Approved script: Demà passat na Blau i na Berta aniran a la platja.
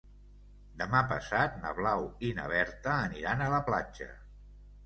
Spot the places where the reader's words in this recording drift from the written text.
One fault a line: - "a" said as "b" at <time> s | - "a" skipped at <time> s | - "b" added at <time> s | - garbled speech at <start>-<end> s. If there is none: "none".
none